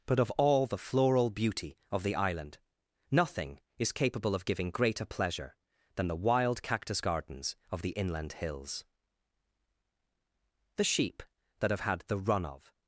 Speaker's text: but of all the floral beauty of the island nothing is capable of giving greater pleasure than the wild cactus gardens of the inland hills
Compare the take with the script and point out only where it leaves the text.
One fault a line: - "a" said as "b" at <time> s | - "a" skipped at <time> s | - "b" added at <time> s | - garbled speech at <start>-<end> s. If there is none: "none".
- "the sheep that have had the run of" added at 10.8 s